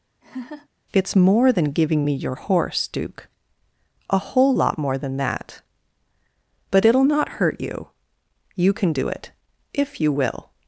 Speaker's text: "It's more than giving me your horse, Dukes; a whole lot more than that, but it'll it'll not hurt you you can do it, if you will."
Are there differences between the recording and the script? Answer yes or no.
yes